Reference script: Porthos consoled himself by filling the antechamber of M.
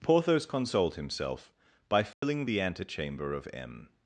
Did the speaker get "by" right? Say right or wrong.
right